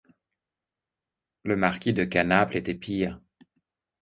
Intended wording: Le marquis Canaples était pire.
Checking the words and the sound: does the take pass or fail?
fail